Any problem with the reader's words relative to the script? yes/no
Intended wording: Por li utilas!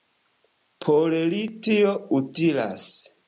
yes